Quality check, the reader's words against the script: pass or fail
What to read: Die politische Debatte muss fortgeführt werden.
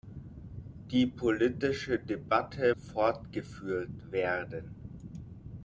fail